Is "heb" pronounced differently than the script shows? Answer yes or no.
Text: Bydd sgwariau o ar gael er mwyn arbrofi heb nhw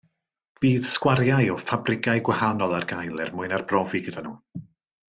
yes